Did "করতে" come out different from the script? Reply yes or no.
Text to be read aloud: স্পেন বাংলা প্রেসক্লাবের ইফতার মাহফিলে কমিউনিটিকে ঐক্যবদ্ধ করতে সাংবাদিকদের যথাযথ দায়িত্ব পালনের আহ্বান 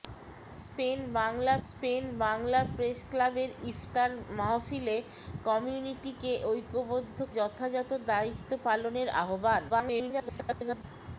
yes